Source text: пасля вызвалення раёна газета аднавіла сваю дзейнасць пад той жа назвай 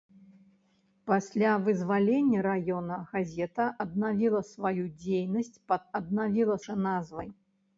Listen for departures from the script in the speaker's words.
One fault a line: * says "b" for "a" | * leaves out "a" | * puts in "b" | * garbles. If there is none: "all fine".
* says "аднавіла" for "той"